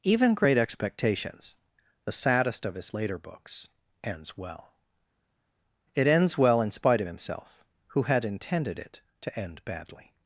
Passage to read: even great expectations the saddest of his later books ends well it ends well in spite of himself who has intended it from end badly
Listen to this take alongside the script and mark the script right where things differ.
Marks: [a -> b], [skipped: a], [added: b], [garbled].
even great expectations the saddest of his later books ends well it ends well in spite of himself who [has -> had] intended it [from -> to] end badly